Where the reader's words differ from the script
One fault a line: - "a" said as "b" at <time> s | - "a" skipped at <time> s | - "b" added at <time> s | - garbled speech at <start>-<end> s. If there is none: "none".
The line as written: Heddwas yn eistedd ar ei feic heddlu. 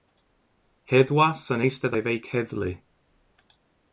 - "ar" skipped at 2.0 s